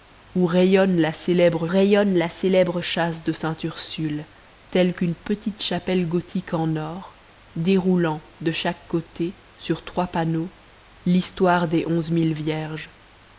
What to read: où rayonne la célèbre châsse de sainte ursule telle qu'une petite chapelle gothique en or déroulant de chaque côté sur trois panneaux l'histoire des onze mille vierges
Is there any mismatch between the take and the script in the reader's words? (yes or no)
yes